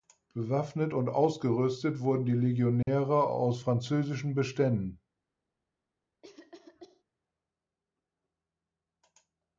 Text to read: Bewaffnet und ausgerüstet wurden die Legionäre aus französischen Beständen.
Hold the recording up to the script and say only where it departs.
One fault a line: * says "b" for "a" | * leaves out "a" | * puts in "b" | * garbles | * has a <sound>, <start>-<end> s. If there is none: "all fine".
* has a dropout, 2.8-2.9 s
* has a cough, 6.2-7.0 s